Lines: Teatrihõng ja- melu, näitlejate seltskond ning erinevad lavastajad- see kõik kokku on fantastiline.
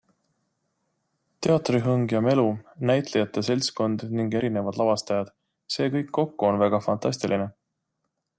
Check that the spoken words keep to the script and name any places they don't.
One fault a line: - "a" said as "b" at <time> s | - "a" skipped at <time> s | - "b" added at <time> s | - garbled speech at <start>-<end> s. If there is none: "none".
- "väga" added at 6.7 s